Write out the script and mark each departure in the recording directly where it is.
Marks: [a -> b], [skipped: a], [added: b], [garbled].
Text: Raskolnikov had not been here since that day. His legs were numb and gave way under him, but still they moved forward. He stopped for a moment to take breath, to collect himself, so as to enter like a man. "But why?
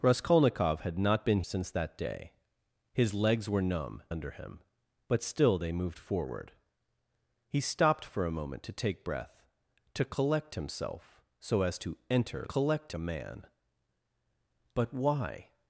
Raskolnikov had not been [skipped: here] since that day. His legs were numb [skipped: and gave way] under him, but still they moved forward. He stopped for a moment to take breath, to collect himself, so as to enter [like -> collect] a man. "But why?